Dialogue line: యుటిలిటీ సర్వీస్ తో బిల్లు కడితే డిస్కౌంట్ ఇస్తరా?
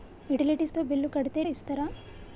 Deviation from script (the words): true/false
true